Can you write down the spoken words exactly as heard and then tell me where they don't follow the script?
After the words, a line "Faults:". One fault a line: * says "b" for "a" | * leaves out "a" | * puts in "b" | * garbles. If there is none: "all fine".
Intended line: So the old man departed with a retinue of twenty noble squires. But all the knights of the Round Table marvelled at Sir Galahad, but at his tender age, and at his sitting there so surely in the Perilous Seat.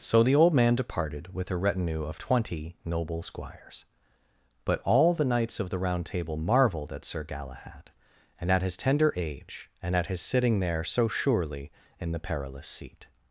So the old man departed with a retinue of twenty noble squires. But all the knights of the Round Table marvelled at Sir Galahad, and at his tender age, and at his sitting there so surely in the Perilous Seat.
Faults:
* says "and" for "but"